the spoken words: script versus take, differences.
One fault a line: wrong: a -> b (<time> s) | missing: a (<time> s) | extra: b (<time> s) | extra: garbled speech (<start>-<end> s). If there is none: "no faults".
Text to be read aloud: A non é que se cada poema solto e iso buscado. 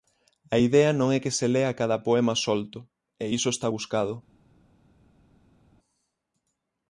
extra: idea (0.7 s)
extra: lea (1.5 s)
extra: está (3.5 s)